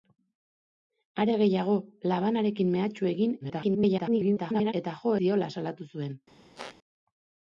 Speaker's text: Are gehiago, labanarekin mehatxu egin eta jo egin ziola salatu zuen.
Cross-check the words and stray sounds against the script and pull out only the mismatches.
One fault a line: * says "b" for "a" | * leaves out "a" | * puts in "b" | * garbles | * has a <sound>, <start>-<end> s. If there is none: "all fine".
* garbles
* leaves out "egin"
* has a squeak, 6.5-6.8 s